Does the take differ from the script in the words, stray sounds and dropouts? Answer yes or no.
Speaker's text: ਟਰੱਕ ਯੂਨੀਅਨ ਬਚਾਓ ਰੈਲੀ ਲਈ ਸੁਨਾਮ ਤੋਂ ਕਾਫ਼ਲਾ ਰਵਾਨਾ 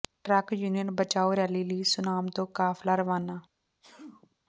yes